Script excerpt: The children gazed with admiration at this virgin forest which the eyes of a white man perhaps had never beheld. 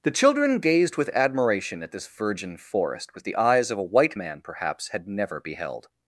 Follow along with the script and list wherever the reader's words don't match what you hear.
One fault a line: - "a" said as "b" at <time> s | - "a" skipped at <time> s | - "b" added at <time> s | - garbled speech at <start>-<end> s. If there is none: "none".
- "which" said as "with" at 3.1 s